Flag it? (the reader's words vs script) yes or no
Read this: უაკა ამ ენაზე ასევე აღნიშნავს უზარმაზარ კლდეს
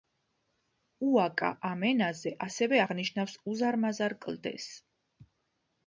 no